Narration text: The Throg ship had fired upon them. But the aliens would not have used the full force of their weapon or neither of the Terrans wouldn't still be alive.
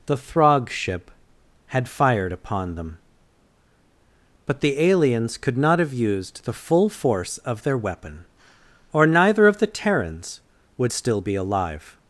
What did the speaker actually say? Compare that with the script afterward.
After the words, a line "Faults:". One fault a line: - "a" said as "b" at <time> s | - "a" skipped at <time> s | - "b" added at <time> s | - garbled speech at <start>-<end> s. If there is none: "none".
The Throg ship had fired upon them. But the aliens could not have used the full force of their weapon or neither of the Terrans would still be alive.
Faults:
- "would" said as "could" at 5.4 s
- "wouldn't" said as "would" at 10.8 s